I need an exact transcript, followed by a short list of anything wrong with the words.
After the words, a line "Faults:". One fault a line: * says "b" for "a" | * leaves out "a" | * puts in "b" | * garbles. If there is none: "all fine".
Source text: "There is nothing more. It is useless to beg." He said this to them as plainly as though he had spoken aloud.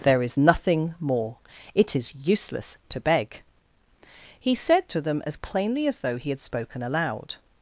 "There is nothing more. It is useless to beg." He said to them as plainly as though he had spoken aloud.
Faults:
* leaves out "this"